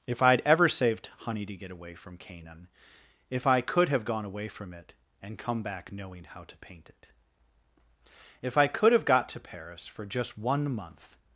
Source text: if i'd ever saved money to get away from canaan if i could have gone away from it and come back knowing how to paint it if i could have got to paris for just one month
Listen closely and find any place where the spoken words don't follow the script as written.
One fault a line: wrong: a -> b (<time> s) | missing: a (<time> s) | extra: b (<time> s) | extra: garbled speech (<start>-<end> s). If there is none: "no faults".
wrong: money -> honey (1.2 s)